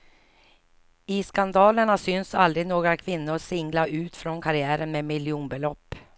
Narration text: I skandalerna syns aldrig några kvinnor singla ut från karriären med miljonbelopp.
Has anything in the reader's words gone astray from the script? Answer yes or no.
no